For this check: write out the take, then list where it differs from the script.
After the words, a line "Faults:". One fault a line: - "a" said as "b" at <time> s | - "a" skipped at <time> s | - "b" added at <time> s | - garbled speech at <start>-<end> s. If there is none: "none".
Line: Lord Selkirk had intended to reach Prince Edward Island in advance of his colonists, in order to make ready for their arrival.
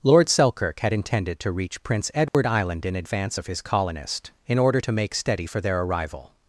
Lord Selkirk had intended to reach Prince Edward Island in advance of his colonist, in order to make steady for their arrival.
Faults:
- "colonists" said as "colonist" at 3.6 s
- "ready" said as "steady" at 5.1 s